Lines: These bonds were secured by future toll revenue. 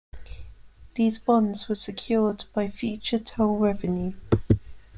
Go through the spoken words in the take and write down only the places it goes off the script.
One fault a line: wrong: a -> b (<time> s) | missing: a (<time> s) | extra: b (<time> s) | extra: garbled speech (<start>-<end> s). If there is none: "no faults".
no faults